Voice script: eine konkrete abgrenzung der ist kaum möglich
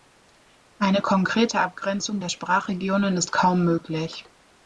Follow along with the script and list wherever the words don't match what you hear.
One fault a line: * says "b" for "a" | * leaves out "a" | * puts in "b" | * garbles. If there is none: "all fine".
* puts in "sprachregionen"